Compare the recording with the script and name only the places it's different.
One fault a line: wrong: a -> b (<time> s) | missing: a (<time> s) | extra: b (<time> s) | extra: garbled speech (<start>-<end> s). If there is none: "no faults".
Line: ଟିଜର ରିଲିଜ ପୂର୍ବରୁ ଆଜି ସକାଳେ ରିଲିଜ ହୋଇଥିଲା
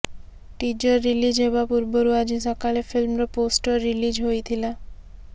extra: ହେବା (1.4 s)
extra: ଫିଲ୍ମର ପୋଷ୍ଟର (2.9 s)